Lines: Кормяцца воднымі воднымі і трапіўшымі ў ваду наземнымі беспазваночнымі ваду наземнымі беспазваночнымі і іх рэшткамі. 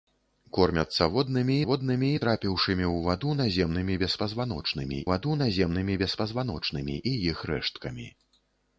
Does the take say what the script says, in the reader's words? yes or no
yes